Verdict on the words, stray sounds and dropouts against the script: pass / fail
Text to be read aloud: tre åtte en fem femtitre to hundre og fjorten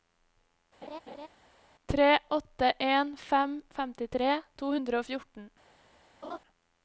fail